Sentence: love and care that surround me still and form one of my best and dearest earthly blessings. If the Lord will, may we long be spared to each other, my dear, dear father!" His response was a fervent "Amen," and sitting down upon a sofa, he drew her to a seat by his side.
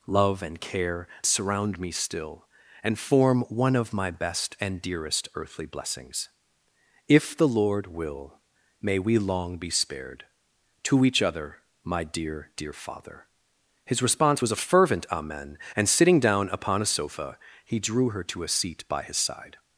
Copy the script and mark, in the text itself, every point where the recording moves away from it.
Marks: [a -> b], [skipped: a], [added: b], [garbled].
love and care [skipped: that] surround me still and form one of my best and dearest earthly blessings. If the Lord will, may we long be spared to each other, my dear, dear father!" His response was a fervent "Amen," and sitting down upon a sofa, he drew her to a seat by his side.